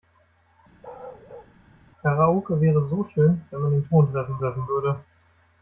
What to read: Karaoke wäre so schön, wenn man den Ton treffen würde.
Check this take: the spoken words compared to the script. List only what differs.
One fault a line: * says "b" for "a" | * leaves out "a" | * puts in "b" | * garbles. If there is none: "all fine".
* puts in "treffen"